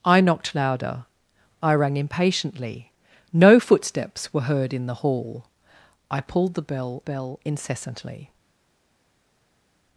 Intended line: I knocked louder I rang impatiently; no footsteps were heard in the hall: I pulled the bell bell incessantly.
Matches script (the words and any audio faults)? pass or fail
pass